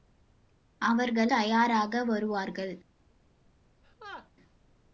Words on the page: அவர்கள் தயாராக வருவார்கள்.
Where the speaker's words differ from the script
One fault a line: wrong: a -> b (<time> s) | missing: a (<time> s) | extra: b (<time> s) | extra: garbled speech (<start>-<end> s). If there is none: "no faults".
no faults